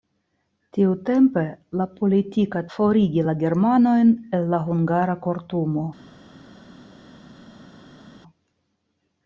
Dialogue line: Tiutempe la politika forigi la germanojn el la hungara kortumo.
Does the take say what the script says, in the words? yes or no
yes